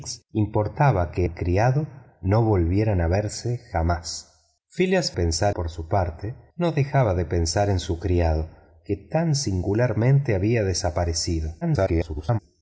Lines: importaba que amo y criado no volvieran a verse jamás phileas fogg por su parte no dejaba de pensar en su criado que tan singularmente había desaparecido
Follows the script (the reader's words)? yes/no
no